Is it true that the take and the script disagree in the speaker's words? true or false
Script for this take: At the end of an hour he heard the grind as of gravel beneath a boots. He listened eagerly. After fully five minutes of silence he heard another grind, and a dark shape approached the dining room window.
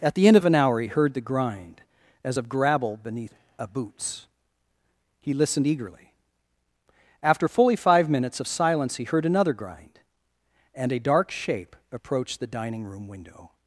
false